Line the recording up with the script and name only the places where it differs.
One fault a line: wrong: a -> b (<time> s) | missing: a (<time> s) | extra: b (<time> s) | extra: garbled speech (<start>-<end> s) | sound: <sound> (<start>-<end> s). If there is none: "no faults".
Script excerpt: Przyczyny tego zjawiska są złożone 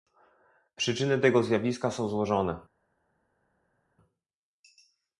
no faults